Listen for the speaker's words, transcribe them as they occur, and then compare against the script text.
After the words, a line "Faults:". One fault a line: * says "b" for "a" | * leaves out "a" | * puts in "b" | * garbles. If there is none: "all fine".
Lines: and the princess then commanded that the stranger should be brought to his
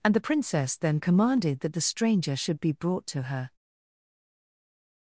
and the princess then commanded that the stranger should be brought to her
Faults:
* says "her" for "his"